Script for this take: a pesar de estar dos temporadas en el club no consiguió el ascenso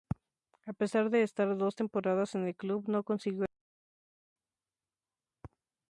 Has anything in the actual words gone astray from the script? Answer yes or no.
no